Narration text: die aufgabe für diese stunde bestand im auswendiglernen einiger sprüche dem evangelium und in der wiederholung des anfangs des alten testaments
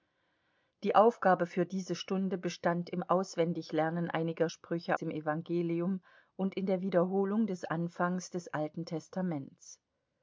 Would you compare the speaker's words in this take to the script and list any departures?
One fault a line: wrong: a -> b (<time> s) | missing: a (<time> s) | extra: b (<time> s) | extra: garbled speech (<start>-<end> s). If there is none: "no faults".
no faults